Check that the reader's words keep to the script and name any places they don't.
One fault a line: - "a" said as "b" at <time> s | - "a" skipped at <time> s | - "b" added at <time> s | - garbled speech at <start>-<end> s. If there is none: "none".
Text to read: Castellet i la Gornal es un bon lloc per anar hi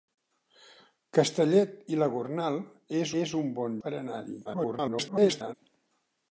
- "es" added at 3.2 s
- "lloc" skipped at 3.8 s
- garbled speech at 4.4-5.5 s